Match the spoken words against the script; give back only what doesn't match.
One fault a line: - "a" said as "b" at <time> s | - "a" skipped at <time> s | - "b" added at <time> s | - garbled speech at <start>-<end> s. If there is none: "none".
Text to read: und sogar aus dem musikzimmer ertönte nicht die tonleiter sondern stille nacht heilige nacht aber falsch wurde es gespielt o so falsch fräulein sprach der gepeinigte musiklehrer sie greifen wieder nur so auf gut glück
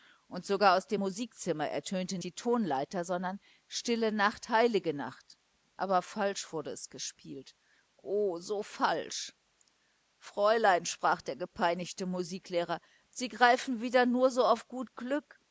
- "nicht" skipped at 2.2 s